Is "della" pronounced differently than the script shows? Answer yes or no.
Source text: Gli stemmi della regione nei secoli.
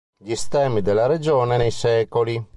no